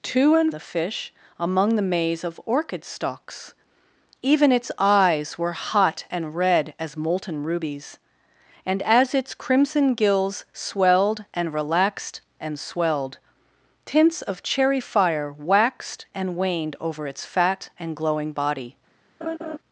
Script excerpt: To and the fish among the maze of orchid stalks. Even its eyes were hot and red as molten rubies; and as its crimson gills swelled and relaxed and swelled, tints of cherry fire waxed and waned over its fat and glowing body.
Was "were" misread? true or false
false